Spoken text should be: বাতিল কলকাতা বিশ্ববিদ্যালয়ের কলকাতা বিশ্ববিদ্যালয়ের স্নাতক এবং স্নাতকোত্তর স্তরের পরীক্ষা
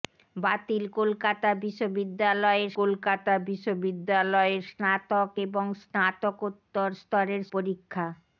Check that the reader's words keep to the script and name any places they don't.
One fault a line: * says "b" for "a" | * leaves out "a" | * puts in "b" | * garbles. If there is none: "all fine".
all fine